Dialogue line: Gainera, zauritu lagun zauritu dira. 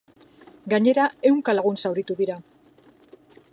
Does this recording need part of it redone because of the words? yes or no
yes